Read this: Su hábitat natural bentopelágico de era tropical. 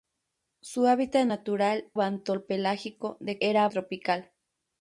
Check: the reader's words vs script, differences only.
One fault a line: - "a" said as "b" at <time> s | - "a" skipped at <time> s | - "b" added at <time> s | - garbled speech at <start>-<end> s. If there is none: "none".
none